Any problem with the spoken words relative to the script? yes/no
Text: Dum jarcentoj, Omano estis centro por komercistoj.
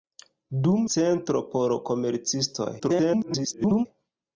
yes